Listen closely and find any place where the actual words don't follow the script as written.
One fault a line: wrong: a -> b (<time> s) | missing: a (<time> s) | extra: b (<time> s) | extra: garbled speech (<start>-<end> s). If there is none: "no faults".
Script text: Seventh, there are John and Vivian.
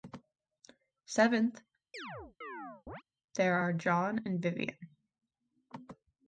no faults